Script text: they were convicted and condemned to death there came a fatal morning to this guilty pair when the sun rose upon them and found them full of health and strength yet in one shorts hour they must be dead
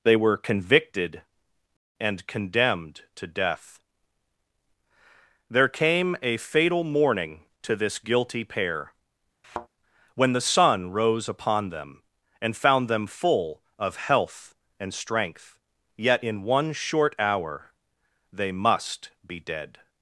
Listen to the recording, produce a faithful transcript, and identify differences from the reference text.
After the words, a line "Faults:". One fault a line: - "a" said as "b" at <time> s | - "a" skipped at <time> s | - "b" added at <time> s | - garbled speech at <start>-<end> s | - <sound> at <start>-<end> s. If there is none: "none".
they were convicted and condemned to death there came a fatal morning to this guilty pair when the sun rose upon them and found them full of health and strength yet in one short hour they must be dead
Faults:
- thud at 9.4-9.7 s
- "shorts" said as "short" at 16.7 s